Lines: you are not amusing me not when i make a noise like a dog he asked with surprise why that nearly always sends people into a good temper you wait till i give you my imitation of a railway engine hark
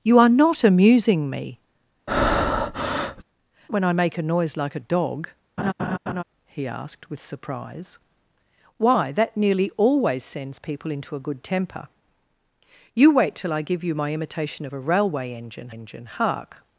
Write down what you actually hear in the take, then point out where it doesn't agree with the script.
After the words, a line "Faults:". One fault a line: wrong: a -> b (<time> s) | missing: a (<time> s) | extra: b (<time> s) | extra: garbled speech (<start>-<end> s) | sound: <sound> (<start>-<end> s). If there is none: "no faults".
you are not amusing me when i make a noise like a dog he asked with surprise why that nearly always sends people into a good temper you wait till i give you my imitation of a railway engine engine hark
Faults:
missing: not (1.6 s)
sound: breath (2.1-3.2 s)
sound: laugh (5.6-6.2 s)
extra: engine (15.7 s)